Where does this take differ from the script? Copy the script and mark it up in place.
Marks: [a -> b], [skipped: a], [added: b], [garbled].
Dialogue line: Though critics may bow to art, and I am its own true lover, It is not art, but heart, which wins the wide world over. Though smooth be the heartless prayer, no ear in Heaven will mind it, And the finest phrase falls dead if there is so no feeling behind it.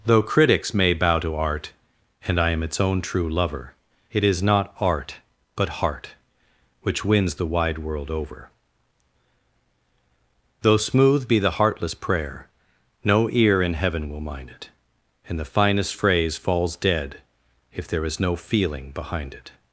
Though critics may bow to art, and I am its own true lover, It is not art, but heart, which wins the wide world over. Though smooth be the heartless prayer, no ear in Heaven will mind it, And the finest phrase falls dead if there is [skipped: so] no feeling behind it.